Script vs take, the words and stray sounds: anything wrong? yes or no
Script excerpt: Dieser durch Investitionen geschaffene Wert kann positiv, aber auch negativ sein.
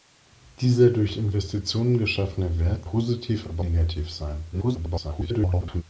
yes